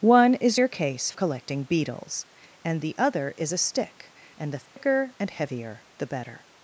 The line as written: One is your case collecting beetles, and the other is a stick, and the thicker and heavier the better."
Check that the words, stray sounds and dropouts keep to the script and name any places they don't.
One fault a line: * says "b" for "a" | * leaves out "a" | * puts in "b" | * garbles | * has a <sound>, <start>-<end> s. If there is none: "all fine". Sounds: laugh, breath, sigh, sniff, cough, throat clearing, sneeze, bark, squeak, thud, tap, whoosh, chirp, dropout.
* has a dropout, 4.7-4.8 s